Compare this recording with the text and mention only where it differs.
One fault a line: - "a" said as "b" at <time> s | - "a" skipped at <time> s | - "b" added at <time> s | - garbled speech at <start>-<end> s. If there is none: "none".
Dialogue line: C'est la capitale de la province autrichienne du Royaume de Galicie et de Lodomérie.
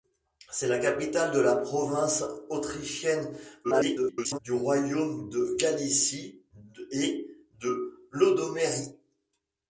- garbled speech at 3.6-4.4 s